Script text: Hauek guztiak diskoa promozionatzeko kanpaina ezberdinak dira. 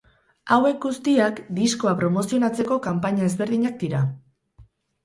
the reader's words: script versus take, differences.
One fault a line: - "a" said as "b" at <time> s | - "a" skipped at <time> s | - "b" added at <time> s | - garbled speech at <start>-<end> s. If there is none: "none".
none